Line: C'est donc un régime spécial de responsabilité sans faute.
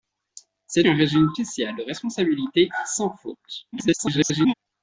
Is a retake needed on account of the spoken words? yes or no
yes